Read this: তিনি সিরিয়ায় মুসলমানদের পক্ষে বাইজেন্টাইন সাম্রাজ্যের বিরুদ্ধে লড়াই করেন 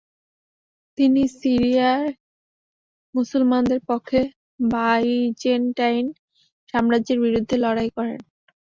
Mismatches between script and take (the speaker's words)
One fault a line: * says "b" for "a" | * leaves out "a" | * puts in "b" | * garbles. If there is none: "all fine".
all fine